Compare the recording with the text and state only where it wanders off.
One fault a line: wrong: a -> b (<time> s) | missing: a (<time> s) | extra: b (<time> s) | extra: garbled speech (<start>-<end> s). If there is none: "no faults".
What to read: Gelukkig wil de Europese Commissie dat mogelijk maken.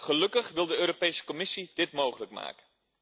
wrong: dat -> dit (1.7 s)